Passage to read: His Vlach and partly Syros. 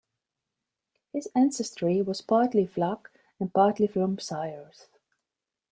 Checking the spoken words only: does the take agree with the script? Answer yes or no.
no